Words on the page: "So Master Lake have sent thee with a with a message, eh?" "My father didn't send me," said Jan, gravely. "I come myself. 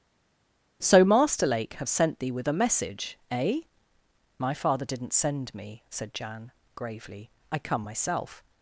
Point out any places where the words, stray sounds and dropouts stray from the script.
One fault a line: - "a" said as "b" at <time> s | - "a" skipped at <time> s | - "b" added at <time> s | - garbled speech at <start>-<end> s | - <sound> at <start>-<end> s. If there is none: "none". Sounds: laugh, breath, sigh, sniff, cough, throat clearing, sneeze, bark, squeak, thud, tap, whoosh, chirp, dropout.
- "with a" skipped at 2.6 s